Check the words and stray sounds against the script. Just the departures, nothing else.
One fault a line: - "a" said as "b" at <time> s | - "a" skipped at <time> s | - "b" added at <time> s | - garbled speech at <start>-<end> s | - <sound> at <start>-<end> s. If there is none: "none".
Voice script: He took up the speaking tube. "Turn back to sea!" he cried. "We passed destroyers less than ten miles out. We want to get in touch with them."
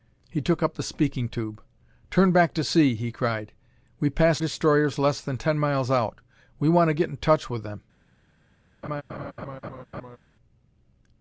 - laugh at 8.8-10.2 s